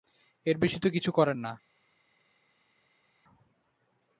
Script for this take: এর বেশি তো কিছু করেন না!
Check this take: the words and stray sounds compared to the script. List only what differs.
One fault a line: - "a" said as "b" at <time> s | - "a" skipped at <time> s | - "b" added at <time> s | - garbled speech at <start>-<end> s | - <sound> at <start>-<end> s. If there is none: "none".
none